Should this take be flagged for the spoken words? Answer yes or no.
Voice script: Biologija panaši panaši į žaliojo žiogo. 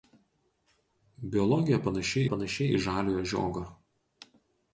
no